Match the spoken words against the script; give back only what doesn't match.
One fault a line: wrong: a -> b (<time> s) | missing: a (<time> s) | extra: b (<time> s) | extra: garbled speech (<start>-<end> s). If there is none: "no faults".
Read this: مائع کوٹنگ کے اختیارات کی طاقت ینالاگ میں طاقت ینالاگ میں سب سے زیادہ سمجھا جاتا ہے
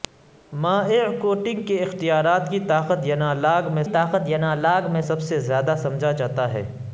no faults